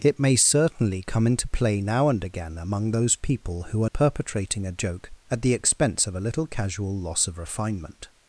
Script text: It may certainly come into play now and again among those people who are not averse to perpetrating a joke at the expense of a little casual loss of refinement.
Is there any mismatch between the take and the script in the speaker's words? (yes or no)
yes